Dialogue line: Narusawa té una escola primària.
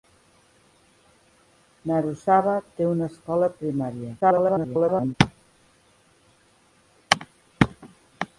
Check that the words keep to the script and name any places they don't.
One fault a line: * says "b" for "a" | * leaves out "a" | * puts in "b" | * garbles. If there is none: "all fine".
* garbles